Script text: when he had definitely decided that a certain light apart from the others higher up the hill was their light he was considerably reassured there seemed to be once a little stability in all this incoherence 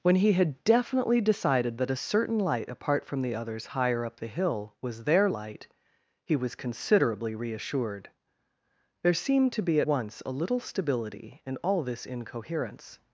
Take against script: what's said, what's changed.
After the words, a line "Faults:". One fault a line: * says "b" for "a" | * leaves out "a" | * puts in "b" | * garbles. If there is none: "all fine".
when he had definitely decided that a certain light apart from the others higher up the hill was their light he was considerably reassured there seemed to be once a little stability in all this incoherence
Faults:
all fine